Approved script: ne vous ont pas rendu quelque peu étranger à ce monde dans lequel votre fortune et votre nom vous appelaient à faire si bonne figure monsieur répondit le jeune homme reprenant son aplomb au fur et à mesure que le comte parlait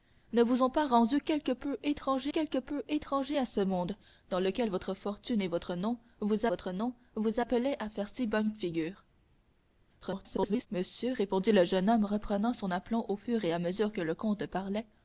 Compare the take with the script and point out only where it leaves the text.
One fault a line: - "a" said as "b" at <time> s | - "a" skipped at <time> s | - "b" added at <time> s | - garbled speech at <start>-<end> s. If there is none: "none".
- "quelque peu étranger" added at 2.3 s
- "votre nom vous" added at 6.5 s
- garbled speech at 10.0-10.7 s